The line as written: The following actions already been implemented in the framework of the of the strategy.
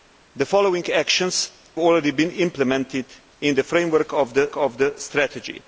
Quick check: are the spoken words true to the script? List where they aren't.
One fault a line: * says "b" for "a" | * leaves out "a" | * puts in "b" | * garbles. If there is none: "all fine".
all fine